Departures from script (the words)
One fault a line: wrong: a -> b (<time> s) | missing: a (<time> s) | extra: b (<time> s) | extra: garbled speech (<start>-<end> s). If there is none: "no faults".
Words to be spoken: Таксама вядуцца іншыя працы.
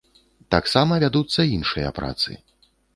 no faults